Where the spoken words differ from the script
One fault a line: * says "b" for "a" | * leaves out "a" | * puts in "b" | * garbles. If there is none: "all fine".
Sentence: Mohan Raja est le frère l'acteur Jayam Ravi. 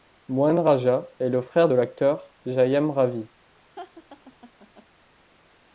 all fine